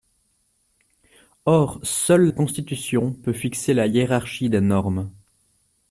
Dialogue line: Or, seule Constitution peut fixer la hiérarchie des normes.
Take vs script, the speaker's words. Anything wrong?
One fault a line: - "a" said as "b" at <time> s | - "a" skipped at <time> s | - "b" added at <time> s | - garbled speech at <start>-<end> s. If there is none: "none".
none